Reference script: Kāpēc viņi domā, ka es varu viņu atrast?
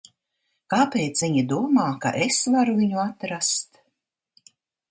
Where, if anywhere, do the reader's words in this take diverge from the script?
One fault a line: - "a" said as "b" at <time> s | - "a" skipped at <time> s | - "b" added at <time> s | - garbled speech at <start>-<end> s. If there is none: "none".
none